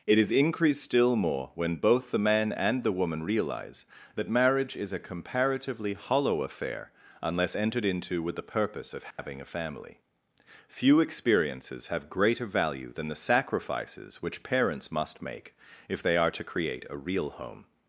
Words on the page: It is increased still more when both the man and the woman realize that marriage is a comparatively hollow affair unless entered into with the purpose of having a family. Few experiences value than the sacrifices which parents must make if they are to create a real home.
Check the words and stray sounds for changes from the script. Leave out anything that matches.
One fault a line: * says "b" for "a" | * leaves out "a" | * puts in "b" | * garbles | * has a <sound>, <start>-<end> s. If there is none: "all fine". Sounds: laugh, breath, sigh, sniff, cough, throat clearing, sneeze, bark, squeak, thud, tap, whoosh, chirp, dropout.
* has a dropout, 9.1-9.2 s
* puts in "have greater"